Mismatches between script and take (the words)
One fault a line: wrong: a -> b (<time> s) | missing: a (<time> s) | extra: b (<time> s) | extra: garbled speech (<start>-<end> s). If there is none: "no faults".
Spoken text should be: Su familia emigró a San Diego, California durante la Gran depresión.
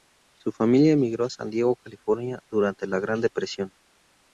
no faults